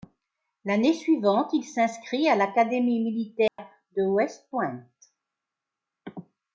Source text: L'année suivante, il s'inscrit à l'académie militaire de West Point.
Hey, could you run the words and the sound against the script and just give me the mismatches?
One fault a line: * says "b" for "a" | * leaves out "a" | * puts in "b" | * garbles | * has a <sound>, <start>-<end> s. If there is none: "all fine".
* has a dropout, 3.5-3.6 s